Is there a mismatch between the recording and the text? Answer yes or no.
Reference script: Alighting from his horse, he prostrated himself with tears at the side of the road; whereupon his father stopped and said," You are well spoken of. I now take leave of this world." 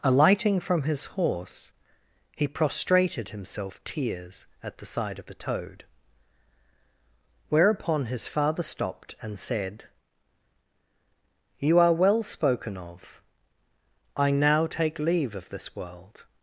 yes